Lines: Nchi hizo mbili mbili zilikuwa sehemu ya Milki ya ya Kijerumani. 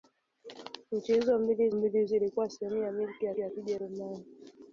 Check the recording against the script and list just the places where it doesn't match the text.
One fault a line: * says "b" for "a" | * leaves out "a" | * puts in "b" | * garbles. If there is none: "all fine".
all fine